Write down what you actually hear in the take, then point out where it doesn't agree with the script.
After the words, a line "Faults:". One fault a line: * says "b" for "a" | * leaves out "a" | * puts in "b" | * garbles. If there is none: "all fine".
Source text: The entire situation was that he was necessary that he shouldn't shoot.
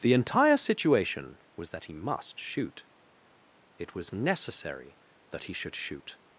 The entire situation was that he must shoot. It was necessary that he should shoot.
Faults:
* puts in "must shoot It"
* says "should" for "shouldn't"